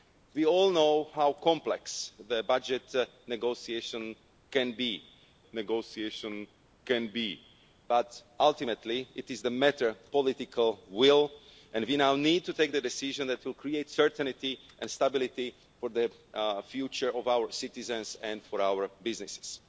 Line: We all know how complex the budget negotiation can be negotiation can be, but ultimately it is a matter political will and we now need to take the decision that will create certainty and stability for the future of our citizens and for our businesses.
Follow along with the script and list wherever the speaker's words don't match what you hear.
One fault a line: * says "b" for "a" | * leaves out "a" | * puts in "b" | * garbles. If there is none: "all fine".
all fine